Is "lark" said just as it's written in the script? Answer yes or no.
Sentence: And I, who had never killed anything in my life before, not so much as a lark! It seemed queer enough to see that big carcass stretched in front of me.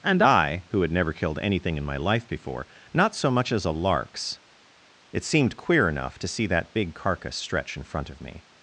no